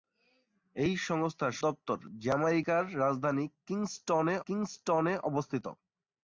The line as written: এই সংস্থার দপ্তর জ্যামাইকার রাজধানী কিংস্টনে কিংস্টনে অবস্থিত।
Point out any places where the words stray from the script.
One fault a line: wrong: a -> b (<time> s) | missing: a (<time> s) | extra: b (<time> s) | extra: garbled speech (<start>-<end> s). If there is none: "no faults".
no faults